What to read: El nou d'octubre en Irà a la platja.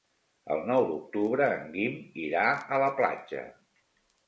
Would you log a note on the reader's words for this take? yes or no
yes